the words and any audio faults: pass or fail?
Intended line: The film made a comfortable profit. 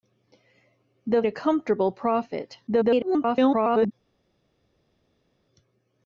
fail